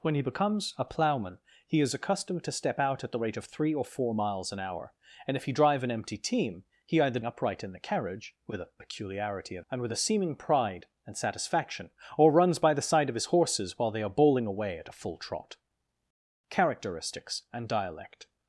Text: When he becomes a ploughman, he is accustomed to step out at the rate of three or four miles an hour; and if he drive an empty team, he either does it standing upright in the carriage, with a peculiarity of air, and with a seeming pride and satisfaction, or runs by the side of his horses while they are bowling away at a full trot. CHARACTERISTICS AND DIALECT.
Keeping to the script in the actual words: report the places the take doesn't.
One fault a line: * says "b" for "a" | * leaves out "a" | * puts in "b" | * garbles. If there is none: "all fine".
* leaves out "does it standing"
* leaves out "air"